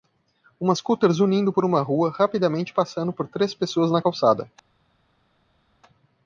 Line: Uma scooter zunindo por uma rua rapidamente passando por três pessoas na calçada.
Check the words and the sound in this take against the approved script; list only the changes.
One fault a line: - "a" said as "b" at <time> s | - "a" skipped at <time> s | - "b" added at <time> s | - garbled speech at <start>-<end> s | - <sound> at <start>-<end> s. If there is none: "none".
none